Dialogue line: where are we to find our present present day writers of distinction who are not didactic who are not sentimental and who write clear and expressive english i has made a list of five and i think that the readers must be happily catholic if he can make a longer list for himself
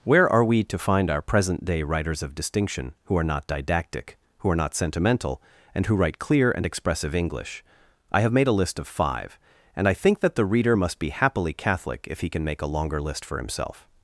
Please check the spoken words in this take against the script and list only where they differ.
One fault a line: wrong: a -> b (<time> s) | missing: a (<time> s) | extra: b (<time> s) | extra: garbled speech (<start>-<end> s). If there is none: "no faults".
missing: present (1.6 s)
wrong: has -> have (8.2 s)
wrong: readers -> reader (10.4 s)